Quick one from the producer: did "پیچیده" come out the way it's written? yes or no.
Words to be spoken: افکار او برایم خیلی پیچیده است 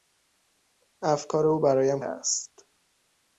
no